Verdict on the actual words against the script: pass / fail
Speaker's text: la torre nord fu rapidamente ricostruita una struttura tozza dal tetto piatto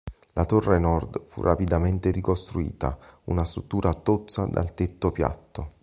pass